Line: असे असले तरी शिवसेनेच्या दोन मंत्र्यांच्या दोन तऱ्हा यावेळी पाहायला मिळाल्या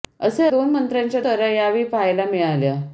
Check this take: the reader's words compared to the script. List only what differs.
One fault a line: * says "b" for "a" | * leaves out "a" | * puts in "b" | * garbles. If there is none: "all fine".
* leaves out "असले तरी शिवसेनेच्या"
* leaves out "दोन"